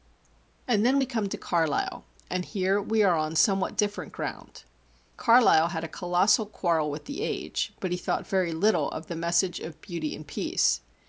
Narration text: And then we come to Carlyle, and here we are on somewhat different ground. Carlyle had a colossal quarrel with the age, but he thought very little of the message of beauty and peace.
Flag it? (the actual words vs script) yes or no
no